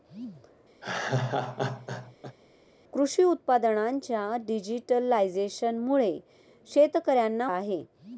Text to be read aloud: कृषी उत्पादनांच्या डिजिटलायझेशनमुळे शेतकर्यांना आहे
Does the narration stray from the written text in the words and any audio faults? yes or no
yes